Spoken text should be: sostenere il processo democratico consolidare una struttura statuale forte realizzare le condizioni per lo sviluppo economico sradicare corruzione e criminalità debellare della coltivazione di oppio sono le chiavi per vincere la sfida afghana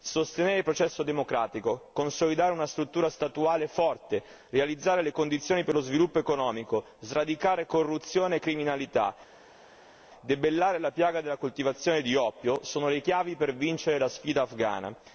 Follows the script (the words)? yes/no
no